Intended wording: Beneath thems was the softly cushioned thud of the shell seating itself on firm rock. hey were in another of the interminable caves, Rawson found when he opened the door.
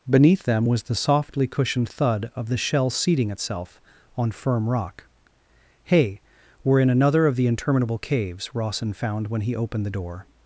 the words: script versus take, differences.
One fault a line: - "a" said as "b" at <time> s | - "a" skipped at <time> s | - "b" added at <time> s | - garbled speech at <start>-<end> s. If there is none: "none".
- "thems" said as "them" at 0.4 s